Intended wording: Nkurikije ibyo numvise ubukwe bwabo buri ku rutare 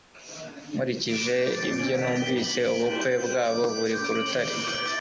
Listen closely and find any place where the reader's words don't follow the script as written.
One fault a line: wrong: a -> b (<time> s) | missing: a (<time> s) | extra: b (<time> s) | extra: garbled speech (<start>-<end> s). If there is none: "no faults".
no faults